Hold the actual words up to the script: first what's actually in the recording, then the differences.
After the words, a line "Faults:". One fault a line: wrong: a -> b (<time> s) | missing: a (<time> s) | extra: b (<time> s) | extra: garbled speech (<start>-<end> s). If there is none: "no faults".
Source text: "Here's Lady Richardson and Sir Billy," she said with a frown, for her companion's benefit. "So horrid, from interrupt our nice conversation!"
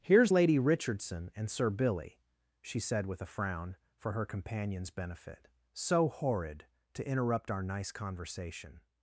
"Here's Lady Richardson and Sir Billy," she said with a frown, for her companion's benefit. "So horrid, to interrupt our nice conversation!"
Faults:
wrong: from -> to (6.9 s)